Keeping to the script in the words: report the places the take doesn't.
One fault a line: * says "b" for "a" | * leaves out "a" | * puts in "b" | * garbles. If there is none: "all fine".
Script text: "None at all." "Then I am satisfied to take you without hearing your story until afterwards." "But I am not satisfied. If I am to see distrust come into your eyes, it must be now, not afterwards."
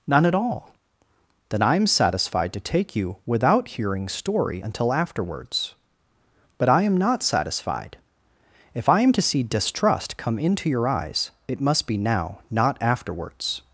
* leaves out "your"